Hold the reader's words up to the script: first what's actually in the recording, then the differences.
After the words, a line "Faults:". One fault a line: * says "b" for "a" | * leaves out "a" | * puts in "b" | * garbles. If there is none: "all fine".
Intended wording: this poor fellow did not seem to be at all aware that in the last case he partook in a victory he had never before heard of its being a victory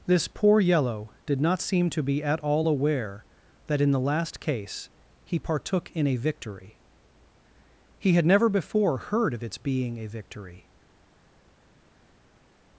this poor yellow did not seem to be at all aware that in the last case he partook in a victory he had never before heard of its being a victory
Faults:
* says "yellow" for "fellow"